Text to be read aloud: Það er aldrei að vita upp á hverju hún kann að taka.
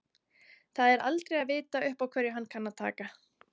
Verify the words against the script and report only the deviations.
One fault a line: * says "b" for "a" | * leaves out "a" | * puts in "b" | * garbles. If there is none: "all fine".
* says "hann" for "hún"